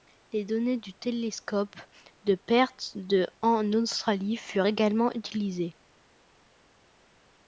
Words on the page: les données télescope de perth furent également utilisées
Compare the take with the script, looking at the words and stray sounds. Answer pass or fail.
fail